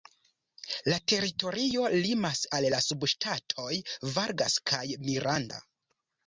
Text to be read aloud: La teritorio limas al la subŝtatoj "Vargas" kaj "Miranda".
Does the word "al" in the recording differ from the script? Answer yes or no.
no